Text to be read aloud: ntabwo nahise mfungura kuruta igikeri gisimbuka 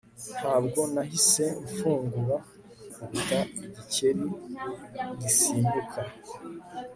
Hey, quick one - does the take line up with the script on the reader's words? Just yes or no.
yes